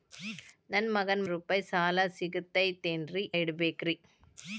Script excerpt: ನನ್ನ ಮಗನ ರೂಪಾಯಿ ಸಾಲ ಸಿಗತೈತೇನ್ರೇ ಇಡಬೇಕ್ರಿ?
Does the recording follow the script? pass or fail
pass